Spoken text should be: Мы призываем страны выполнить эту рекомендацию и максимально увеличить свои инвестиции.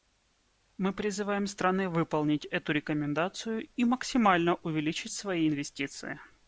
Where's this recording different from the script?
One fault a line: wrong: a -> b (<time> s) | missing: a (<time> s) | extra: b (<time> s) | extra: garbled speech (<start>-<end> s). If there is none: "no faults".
no faults